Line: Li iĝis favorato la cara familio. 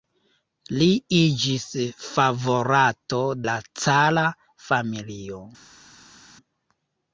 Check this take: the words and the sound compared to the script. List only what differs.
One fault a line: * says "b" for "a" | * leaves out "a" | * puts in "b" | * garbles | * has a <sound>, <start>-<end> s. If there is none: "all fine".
all fine